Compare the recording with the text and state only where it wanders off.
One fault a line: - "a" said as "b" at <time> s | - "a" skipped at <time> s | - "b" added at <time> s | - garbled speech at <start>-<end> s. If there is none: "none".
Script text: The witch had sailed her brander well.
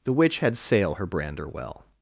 - "sailed" said as "sail" at 0.6 s